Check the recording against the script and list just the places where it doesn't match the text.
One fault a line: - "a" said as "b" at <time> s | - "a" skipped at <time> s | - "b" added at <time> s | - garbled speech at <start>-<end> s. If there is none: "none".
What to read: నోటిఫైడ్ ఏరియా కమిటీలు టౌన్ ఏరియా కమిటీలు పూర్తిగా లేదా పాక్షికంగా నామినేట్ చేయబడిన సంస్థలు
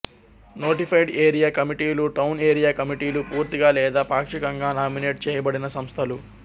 none